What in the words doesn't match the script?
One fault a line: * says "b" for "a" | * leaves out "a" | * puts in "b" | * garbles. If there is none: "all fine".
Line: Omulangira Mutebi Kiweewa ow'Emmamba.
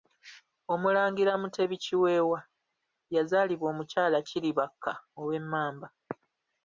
* puts in "yazaalibwa Omukyala Kiribakka"